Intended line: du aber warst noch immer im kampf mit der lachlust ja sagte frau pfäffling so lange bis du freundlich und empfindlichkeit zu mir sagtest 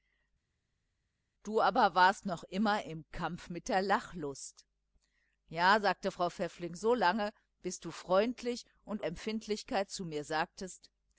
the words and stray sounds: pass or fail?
pass